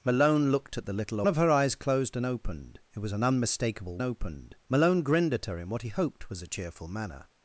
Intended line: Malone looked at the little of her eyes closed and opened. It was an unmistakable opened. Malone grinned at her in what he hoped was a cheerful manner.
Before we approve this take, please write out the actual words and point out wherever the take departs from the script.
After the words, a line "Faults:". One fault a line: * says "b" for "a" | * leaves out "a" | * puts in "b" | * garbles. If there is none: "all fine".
Malone looked at the little of her eyes closed and opened. It was an unmistakable opened. Malone grinned at her in what he hoped was a cheerful manner.
Faults:
all fine